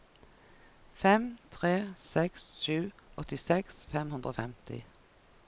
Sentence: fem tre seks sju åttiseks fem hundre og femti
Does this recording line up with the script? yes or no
yes